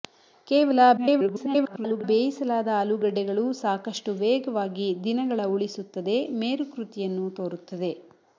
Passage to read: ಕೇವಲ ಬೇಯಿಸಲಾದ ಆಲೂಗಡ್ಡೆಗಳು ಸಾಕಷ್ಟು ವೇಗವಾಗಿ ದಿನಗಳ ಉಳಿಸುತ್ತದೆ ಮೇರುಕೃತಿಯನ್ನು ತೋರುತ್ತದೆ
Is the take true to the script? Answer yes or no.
no